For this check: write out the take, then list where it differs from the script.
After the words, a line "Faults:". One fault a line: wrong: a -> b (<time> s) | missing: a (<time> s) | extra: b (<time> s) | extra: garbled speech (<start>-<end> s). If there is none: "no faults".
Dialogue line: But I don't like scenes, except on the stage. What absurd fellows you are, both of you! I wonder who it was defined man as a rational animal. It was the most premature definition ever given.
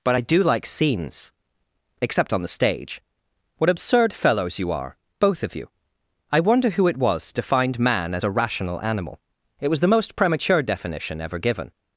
But I do like scenes, except on the stage. What absurd fellows you are, both of you! I wonder who it was defined man as a rational animal. It was the most premature definition ever given.
Faults:
wrong: don't -> do (0.2 s)